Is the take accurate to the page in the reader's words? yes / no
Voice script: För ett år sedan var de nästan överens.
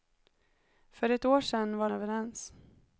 no